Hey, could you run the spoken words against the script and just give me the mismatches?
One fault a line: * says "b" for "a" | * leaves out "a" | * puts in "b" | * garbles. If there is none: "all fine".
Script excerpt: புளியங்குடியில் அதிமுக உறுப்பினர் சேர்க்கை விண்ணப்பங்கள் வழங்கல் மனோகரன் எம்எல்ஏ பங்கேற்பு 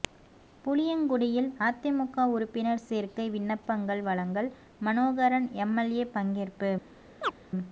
all fine